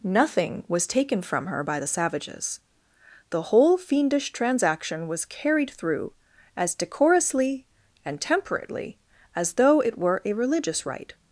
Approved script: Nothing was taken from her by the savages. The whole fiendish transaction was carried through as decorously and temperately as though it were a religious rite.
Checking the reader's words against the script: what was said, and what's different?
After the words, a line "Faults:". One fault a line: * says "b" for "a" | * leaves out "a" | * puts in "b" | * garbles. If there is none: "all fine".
Nothing was taken from her by the savages. The whole fiendish transaction was carried through as decorously and temperately as though it were a religious rite.
Faults:
all fine